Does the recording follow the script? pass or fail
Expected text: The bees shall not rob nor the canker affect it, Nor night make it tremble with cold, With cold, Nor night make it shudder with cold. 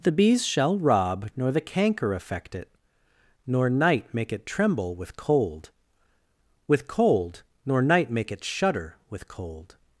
fail